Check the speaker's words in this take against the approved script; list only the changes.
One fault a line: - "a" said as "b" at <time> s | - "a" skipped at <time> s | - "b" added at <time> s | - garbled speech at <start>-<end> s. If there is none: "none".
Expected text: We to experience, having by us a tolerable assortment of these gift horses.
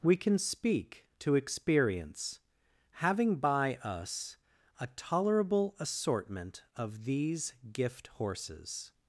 - "can speak" added at 0.1 s